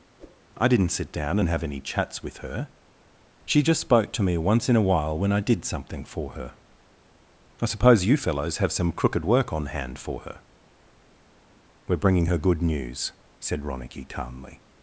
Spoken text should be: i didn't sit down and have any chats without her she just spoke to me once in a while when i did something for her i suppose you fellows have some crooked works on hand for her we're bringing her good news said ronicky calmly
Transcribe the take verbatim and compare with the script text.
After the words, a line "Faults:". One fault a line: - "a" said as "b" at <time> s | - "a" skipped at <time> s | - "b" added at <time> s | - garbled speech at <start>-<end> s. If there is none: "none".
i didn't sit down and have any chats with her she just spoke to me once in a while when i did something for her i suppose you fellows have some crooked work on hand for her we're bringing her good news said ronicky calmly
Faults:
- "without" said as "with" at 2.2 s
- "works" said as "work" at 9.2 s